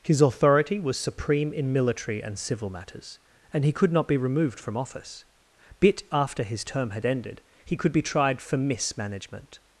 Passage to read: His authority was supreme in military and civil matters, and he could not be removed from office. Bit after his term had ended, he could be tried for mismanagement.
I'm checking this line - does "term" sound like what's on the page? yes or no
yes